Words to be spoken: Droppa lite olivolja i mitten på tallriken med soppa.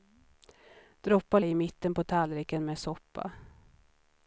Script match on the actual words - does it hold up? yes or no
no